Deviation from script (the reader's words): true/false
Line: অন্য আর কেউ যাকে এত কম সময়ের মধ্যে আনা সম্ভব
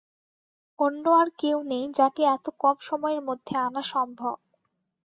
true